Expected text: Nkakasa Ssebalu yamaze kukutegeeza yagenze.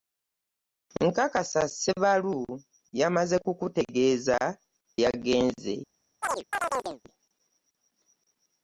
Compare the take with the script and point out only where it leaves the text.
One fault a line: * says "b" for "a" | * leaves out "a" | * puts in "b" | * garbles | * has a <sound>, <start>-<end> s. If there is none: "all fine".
* has a chirp, 6.2-7.0 s